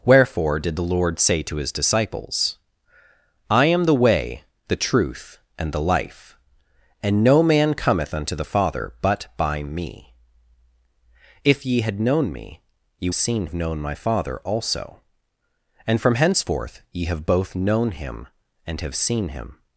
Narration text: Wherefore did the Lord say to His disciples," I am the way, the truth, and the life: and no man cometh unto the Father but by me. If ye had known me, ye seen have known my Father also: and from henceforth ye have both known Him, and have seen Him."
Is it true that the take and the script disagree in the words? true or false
false